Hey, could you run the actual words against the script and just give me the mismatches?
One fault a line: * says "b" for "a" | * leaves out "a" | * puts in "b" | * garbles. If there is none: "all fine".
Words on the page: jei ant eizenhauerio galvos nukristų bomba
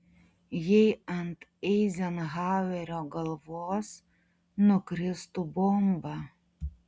all fine